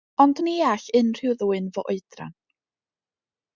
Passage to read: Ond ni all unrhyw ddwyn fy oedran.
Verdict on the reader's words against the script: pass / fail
pass